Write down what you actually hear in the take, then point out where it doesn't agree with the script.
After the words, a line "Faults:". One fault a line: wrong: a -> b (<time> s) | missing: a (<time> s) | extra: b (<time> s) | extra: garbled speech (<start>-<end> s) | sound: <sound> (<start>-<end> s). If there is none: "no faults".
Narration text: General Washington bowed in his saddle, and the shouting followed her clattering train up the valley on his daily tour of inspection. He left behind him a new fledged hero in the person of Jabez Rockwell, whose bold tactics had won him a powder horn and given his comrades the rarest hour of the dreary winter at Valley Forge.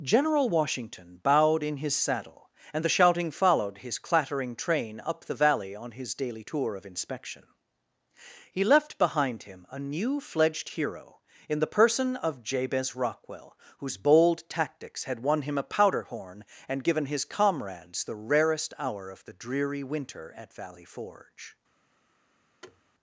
General Washington bowed in his saddle, and the shouting followed his clattering train up the valley on his daily tour of inspection. He left behind him a new fledged hero in the person of Jabez Rockwell, whose bold tactics had won him a powder horn and given his comrades the rarest hour of the dreary winter at Valley Forge.
Faults:
wrong: her -> his (3.8 s)
sound: thud (22.6-22.8 s)